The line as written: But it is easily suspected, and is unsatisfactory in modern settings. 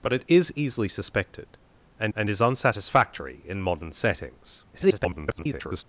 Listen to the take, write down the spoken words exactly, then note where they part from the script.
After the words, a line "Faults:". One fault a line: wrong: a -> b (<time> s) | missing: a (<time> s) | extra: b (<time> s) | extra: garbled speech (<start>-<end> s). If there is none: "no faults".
But it is easily suspected, and and is unsatisfactory in modern settings. [garbled]
Faults:
extra: and (2.1 s)
extra: garbled speech (4.7-5.8 s)